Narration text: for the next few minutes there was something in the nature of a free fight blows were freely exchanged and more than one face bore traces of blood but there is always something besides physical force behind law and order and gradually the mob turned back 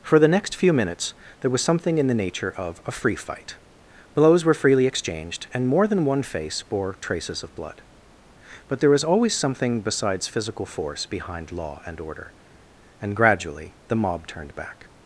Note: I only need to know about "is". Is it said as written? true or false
false